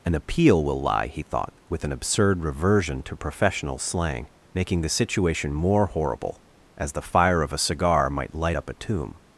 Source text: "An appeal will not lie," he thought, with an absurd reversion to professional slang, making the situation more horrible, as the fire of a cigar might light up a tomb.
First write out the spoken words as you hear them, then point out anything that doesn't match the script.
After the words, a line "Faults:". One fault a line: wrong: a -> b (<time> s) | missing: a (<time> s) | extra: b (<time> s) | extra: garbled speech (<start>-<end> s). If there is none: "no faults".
"An appeal will lie," he thought, with an absurd reversion to professional slang, making the situation more horrible, as the fire of a cigar might light up a tomb.
Faults:
missing: not (0.8 s)